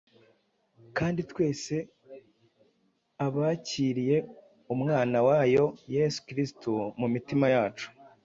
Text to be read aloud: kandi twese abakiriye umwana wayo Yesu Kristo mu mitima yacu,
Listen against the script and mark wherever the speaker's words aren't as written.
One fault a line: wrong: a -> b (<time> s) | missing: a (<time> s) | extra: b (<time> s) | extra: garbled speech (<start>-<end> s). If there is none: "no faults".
no faults